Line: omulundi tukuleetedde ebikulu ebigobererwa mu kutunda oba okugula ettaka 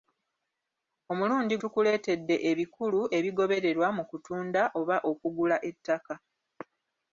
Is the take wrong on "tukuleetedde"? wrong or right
right